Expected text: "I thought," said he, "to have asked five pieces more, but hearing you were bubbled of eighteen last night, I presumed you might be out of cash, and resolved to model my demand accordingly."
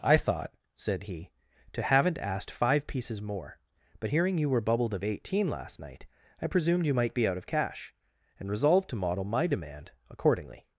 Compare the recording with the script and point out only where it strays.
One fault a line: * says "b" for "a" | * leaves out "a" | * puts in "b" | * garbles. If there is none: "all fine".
* says "haven't" for "have"